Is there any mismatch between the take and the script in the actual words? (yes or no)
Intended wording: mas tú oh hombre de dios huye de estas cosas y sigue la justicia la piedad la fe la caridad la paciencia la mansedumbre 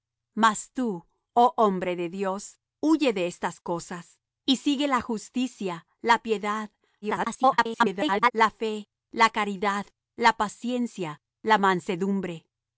yes